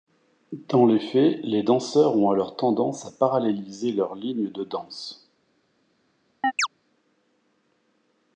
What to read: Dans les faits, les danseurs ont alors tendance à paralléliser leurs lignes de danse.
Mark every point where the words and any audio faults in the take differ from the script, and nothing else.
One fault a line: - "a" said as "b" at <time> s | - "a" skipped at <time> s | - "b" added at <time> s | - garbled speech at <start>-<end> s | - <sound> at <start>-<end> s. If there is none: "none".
- chirp at 6.4-6.7 s